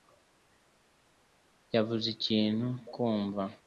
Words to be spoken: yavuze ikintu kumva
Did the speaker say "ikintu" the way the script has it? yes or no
yes